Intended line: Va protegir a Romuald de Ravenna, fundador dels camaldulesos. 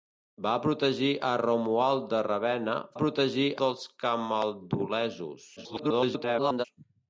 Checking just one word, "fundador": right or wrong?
wrong